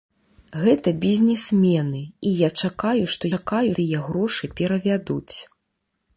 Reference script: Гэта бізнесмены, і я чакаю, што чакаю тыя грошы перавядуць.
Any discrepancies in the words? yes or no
no